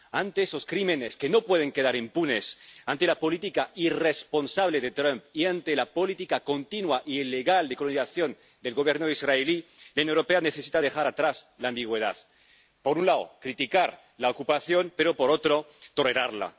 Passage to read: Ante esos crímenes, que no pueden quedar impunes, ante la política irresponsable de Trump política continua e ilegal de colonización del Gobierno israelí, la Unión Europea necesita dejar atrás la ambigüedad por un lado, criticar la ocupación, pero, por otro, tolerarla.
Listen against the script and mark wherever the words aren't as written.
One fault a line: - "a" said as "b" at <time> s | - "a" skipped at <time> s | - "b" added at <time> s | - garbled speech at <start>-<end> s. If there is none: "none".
- "y ante la" added at 5.3 s